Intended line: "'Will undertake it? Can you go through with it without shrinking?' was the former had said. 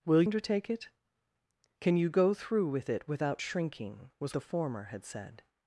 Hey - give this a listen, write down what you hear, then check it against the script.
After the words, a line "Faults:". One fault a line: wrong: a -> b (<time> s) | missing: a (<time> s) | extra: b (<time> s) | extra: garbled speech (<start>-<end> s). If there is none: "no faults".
"'Will undertake it? Can you go through with it without shrinking?' was the former had said.
Faults:
no faults